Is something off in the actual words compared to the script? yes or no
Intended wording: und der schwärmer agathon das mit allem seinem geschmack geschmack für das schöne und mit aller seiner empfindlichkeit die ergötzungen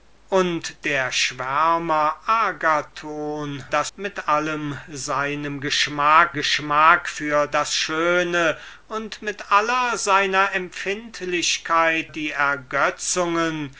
no